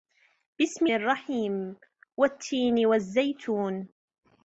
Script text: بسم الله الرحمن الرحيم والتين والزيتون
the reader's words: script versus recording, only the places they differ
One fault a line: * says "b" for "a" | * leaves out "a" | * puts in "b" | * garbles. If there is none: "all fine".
* leaves out "الله الرحمن"